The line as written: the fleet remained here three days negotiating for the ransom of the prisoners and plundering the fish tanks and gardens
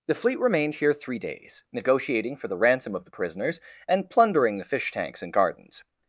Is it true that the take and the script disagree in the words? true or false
false